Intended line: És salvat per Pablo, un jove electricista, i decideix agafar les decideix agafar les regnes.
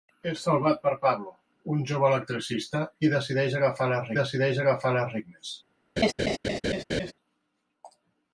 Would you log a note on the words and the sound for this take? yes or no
yes